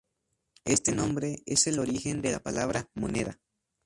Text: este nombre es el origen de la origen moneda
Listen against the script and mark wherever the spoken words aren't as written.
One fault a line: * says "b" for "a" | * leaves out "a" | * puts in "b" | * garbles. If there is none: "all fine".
* says "palabra" for "origen"